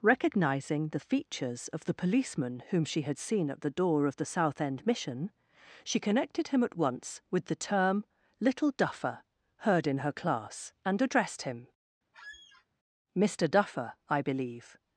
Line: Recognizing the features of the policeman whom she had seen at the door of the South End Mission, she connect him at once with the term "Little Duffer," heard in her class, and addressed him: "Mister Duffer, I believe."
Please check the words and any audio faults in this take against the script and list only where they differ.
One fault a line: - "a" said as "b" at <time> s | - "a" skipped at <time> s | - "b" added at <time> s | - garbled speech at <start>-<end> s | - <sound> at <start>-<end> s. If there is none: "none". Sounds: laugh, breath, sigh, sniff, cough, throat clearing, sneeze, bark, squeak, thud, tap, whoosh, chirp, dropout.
- "connect" said as "connected" at 6.0 s
- squeak at 12.1-12.7 s